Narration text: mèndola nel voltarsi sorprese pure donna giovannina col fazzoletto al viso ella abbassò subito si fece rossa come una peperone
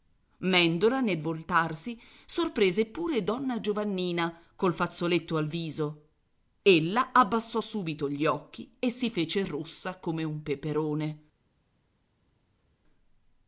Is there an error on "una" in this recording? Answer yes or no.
yes